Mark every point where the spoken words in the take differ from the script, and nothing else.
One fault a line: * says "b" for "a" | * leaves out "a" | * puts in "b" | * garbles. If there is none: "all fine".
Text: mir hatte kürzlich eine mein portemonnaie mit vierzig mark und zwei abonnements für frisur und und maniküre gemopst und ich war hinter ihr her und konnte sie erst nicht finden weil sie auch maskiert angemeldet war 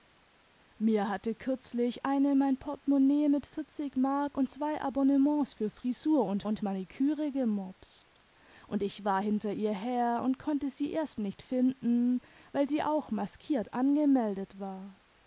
all fine